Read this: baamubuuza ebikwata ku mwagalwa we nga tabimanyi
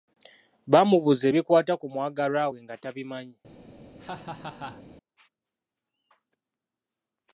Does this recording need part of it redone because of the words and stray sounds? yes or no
yes